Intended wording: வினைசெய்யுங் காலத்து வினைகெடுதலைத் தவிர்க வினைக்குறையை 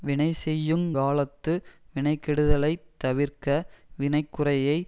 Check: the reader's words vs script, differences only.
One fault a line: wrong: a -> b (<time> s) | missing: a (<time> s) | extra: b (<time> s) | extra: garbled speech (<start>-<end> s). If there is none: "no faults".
no faults